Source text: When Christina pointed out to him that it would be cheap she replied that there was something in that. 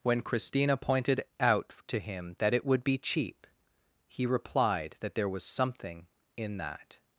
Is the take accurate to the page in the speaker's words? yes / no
no